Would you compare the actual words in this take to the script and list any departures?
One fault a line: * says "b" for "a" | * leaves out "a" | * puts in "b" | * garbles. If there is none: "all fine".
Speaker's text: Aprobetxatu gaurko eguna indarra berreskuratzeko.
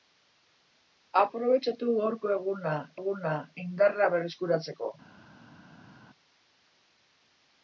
* puts in "eguna"